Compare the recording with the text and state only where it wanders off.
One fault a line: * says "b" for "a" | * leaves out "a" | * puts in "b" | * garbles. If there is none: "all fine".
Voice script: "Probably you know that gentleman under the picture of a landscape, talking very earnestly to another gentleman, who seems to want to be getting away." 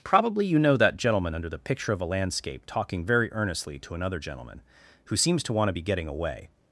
all fine